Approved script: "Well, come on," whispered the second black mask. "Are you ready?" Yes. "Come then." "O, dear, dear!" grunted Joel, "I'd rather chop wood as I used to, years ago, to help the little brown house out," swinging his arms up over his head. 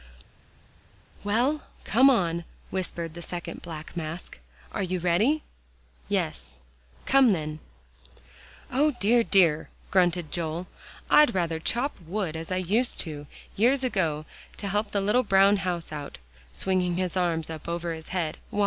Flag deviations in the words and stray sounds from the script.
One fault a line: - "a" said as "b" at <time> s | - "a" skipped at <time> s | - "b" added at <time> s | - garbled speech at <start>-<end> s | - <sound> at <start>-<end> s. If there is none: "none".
none